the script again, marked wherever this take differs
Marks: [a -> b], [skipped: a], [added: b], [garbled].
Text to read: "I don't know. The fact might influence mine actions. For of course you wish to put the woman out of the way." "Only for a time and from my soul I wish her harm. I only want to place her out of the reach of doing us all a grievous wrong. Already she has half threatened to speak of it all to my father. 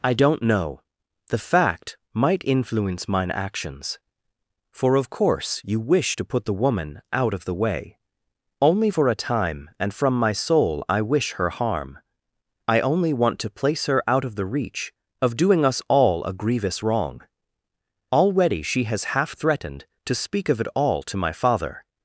"I don't know. The fact might influence mine actions. For of course you wish to put the woman out of the way." "Only for a time and from my soul I wish her harm. I only want to place her out of the reach of doing us all a grievous wrong. Already she has half threatened to speak of it all to my father.